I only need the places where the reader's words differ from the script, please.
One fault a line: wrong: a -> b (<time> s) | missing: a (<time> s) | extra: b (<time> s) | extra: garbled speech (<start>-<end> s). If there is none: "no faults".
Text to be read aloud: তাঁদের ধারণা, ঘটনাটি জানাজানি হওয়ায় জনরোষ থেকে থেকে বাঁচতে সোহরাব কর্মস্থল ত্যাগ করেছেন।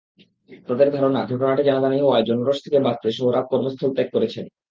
missing: থেকে (2.8 s)